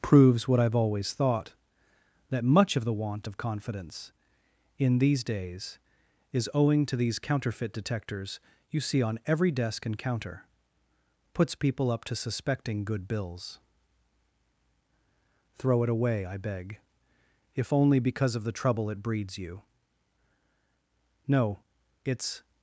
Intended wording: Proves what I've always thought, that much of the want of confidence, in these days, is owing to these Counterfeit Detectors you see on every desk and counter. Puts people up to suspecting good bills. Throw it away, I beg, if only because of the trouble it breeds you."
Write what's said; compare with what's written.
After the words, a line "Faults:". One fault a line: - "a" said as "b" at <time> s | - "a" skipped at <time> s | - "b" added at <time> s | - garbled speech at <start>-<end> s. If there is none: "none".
Proves what I've always thought, that much of the want of confidence, in these days, is owing to these Counterfeit Detectors you see on every desk and counter. Puts people up to suspecting good bills. Throw it away, I beg, if only because of the trouble it breeds you." "No; it's
Faults:
- "No it's" added at 21.3 s